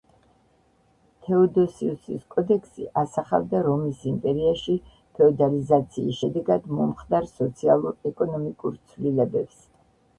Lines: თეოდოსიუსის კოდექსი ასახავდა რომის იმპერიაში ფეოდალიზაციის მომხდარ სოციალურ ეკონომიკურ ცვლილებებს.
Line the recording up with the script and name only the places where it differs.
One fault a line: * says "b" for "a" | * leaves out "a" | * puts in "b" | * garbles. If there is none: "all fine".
* puts in "შედეგად"